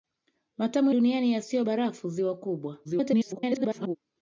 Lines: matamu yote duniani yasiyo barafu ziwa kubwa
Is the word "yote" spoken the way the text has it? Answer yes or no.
no